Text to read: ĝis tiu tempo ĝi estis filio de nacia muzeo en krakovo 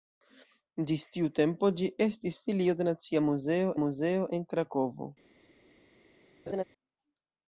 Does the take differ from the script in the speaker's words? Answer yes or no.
yes